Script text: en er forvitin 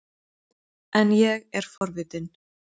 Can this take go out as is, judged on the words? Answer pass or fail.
fail